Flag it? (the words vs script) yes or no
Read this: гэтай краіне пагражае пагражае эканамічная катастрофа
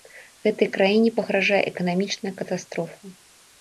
yes